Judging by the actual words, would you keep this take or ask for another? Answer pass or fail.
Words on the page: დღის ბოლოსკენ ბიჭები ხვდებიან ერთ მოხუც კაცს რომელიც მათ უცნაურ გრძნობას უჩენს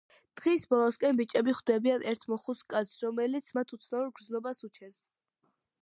pass